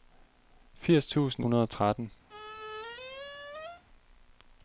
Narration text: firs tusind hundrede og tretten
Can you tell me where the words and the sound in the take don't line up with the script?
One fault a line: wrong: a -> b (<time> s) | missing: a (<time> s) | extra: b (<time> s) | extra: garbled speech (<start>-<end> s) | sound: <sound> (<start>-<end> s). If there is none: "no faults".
sound: squeak (2.3-3.8 s)